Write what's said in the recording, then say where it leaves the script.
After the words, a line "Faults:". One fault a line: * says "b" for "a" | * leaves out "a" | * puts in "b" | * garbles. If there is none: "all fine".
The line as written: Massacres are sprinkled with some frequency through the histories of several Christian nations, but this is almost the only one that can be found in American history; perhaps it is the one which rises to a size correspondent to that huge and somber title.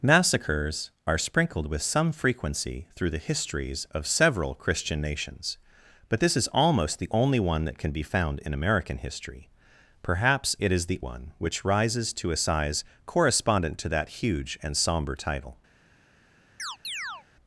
Massacres are sprinkled with some frequency through the histories of several Christian nations, but this is almost the only one that can be found in American history; perhaps it is the one which rises to a size correspondent to that huge and somber title.
Faults:
all fine